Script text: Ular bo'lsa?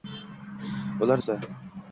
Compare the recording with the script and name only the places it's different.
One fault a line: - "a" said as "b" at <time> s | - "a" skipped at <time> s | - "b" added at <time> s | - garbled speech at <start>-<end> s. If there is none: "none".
none